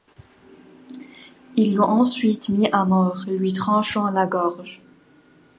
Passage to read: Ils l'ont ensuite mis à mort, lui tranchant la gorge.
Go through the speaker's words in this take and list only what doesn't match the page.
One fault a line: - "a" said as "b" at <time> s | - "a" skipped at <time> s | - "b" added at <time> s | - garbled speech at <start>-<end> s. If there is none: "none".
none